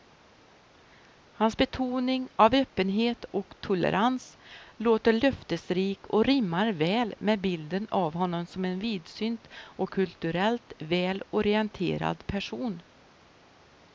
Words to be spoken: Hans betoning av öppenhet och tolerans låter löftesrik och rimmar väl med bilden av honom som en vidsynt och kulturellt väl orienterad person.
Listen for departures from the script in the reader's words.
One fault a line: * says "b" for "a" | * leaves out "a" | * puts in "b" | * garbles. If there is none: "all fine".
all fine